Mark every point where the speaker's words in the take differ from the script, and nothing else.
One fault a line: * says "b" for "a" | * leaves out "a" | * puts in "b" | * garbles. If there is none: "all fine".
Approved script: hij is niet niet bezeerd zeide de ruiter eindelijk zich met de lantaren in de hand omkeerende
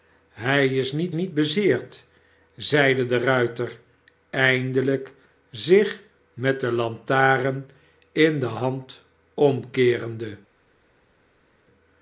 all fine